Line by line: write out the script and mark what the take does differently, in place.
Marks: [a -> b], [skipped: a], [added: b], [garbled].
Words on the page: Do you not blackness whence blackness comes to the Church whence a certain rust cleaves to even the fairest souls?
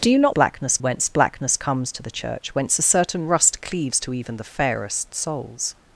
Do you not blackness whence blackness comes to the Church whence a certain rust cleaves to even the fairest souls?